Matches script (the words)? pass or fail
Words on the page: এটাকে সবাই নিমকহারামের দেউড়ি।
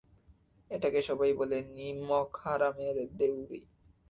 fail